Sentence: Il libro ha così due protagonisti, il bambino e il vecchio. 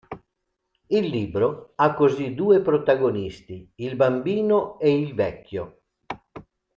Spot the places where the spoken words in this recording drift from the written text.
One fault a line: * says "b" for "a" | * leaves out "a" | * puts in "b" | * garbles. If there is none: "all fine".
all fine